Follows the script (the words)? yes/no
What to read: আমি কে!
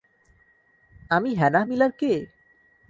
no